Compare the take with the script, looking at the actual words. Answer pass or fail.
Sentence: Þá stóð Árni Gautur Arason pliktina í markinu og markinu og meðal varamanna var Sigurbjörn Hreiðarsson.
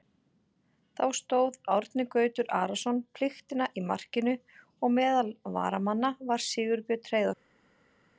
fail